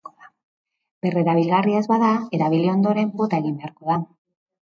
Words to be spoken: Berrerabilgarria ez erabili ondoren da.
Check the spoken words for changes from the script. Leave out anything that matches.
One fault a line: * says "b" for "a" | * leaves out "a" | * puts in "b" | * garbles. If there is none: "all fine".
* puts in "bada"
* puts in "bota egin beharko"